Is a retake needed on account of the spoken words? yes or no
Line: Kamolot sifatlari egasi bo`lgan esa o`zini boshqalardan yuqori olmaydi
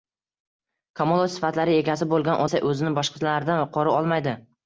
no